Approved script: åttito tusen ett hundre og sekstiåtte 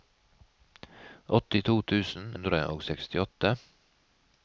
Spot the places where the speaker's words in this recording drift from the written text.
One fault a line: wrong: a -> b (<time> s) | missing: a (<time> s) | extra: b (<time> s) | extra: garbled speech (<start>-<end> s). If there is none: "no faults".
missing: ett (2.3 s)